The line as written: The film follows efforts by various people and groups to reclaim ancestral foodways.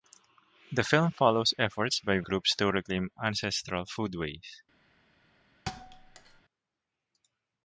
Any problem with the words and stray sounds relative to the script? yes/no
yes